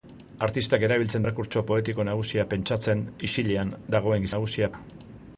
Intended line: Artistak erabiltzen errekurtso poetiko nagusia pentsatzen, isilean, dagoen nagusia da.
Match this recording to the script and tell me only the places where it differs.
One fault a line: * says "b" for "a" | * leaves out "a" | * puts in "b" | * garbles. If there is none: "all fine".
all fine